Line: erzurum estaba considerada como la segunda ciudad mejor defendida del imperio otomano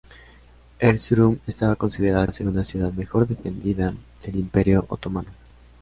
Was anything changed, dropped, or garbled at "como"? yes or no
yes